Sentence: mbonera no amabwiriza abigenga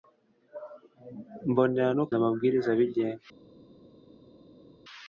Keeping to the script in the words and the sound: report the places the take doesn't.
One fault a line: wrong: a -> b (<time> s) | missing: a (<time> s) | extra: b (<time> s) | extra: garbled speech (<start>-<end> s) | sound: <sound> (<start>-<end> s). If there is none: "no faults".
no faults